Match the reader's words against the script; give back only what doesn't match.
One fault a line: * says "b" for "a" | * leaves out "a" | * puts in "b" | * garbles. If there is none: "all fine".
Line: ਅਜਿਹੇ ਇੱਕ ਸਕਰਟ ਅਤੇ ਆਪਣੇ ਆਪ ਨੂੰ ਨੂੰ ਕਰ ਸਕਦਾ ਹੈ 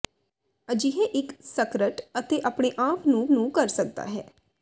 all fine